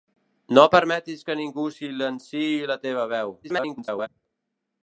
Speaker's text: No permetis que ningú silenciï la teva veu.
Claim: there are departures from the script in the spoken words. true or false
true